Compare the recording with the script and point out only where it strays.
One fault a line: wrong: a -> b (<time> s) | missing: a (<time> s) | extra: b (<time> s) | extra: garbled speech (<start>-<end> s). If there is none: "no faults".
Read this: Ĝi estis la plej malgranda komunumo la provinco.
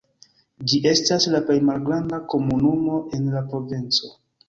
wrong: estis -> estas (0.9 s)
extra: en (3.2 s)